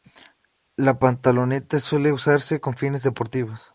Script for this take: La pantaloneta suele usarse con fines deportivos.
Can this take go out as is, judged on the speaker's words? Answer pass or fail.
pass